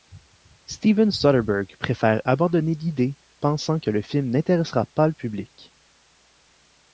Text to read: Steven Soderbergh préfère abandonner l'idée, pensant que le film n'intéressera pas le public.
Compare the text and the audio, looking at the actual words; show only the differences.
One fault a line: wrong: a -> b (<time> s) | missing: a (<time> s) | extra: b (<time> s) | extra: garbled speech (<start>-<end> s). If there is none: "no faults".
no faults